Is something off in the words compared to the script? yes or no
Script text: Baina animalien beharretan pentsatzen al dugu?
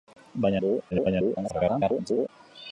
yes